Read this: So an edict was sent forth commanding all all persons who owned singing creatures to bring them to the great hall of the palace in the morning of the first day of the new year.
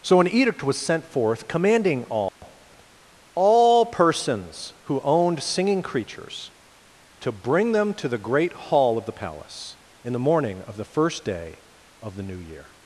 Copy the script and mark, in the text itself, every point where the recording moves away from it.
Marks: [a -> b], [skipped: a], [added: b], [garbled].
So an edict was sent forth commanding all all persons who owned singing creatures to bring them to the great hall of the palace in the morning of the first day of the new year.